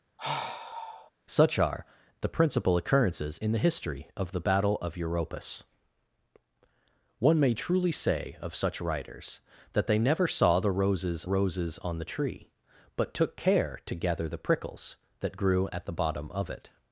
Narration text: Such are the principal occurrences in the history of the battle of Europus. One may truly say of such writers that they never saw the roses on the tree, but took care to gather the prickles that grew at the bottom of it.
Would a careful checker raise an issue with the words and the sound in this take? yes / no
yes